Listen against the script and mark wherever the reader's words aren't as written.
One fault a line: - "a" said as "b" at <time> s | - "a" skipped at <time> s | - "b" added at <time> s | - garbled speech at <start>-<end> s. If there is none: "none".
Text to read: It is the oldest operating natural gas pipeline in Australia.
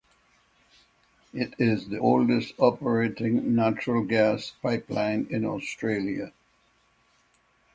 none